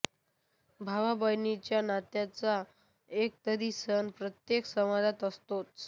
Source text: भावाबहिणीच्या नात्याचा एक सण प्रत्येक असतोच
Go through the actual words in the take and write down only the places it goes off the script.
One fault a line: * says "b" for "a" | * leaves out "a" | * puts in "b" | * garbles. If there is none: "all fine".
* puts in "तरी"
* puts in "समाजात"